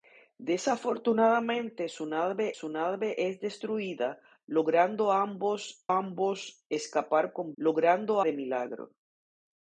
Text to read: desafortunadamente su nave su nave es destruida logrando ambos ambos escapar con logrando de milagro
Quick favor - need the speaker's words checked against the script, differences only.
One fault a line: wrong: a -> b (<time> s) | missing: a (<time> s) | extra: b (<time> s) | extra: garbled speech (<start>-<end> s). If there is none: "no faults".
no faults